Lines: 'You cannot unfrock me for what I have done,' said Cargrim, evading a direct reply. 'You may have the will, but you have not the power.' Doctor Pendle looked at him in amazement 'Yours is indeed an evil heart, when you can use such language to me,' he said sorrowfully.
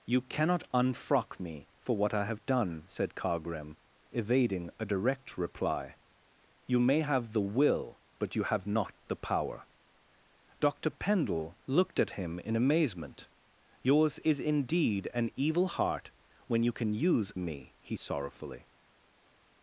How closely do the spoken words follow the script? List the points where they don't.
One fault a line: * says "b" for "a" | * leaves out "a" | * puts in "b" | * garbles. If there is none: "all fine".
* leaves out "such language to"
* leaves out "said"